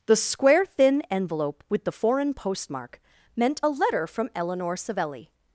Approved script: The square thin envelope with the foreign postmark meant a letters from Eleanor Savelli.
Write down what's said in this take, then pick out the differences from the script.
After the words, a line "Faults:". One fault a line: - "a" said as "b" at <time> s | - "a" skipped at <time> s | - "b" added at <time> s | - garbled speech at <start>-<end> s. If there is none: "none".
The square thin envelope with the foreign postmark meant a letter from Eleanor Savelli.
Faults:
- "letters" said as "letter" at 3.7 s